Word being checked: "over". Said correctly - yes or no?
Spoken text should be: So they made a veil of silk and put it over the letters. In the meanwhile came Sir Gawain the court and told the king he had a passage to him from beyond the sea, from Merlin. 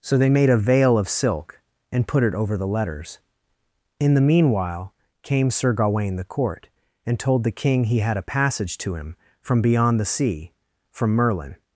yes